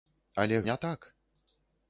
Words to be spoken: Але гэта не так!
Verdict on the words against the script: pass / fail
fail